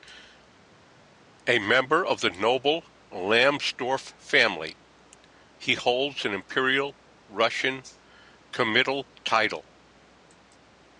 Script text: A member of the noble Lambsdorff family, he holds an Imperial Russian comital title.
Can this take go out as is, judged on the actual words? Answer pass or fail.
pass